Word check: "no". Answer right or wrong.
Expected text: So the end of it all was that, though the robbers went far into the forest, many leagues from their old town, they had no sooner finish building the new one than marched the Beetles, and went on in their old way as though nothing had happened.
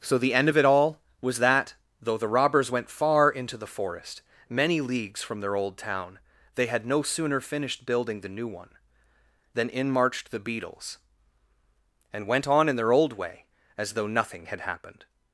right